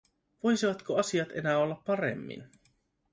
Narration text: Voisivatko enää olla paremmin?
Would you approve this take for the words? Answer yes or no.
no